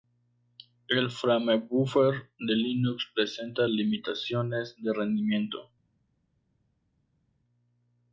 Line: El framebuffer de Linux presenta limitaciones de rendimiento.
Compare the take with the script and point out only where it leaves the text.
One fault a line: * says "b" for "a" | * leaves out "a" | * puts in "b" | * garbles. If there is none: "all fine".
all fine